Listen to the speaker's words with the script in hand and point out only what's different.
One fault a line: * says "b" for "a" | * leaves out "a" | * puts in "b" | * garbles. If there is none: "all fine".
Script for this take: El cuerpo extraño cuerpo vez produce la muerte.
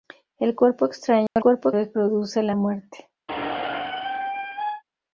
all fine